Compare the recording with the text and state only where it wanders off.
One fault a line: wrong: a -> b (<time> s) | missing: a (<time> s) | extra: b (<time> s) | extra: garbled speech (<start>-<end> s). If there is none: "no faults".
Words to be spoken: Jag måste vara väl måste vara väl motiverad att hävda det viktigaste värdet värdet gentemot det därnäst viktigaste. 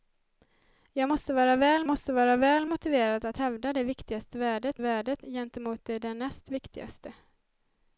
no faults